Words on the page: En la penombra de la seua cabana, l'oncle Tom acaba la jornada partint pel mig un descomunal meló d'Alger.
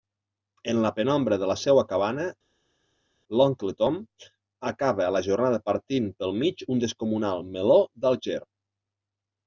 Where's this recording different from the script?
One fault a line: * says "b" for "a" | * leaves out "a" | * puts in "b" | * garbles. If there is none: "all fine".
all fine